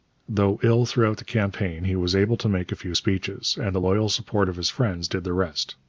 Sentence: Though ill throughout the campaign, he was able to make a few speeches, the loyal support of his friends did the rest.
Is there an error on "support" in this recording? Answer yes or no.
no